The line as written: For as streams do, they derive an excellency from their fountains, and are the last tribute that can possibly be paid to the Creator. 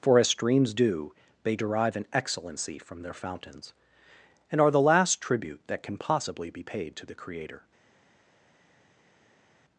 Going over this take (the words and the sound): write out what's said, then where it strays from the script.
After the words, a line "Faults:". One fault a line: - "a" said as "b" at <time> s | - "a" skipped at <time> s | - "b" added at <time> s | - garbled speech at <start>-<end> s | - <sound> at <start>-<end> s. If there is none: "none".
For as streams do, they derive an excellency from their fountains, and are the last tribute that can possibly be paid to the Creator.
Faults:
none